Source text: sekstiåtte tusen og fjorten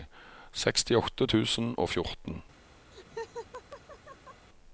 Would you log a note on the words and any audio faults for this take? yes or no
yes